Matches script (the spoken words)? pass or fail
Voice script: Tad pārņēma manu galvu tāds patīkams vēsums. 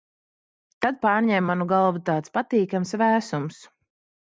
pass